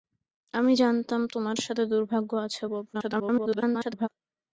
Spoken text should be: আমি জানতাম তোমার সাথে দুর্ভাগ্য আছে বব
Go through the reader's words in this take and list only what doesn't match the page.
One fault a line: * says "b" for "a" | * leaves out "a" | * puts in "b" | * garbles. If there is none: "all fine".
* garbles